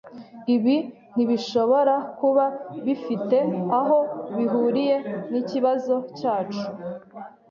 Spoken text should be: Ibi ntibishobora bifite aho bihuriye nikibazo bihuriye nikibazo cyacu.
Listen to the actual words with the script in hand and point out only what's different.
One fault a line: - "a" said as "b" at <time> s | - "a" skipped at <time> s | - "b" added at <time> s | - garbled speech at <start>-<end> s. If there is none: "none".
- "kuba" added at 2.2 s
- "bihuriye nikibazo" skipped at 5.9 s